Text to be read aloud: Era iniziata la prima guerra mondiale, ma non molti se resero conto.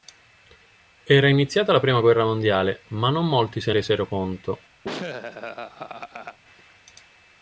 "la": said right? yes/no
yes